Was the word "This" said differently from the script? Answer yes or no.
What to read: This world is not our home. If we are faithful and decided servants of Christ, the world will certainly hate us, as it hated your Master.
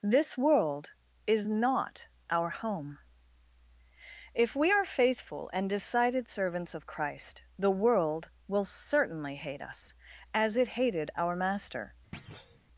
no